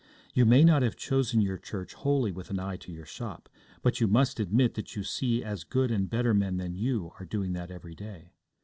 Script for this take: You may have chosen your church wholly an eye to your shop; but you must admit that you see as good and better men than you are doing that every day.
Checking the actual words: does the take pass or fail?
fail